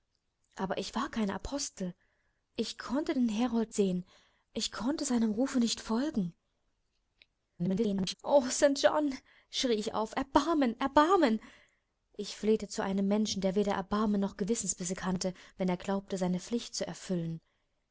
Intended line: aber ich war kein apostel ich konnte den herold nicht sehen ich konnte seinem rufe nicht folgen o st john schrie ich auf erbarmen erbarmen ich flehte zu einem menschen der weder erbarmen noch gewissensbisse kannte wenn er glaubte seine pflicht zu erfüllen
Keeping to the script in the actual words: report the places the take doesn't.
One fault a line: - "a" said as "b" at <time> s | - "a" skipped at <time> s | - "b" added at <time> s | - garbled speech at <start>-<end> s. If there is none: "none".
- "nicht" skipped at 3.7 s
- garbled speech at 7.6-8.1 s